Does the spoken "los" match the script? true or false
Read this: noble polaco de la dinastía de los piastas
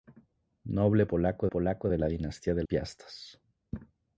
false